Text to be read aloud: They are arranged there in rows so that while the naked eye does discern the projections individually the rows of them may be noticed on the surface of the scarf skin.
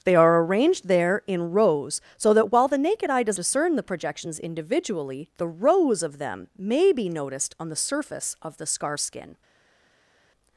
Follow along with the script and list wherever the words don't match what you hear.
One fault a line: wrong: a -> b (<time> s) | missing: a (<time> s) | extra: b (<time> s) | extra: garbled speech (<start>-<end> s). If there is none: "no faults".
no faults